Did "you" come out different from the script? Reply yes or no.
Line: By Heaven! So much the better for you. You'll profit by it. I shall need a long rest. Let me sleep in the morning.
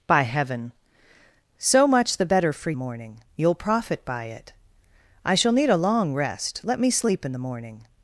yes